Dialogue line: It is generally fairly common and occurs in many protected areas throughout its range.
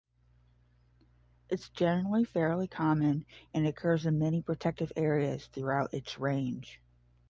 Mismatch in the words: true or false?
false